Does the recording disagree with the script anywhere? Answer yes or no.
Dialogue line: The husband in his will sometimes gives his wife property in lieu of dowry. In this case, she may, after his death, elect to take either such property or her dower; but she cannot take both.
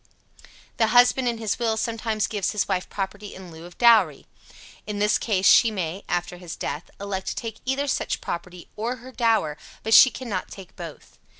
no